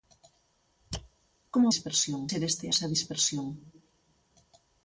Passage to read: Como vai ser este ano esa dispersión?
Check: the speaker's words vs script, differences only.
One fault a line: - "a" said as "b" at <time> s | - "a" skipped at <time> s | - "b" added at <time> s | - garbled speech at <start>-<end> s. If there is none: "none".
- "vai" said as "dispersión" at 1.7 s
- "ano" skipped at 2.7 s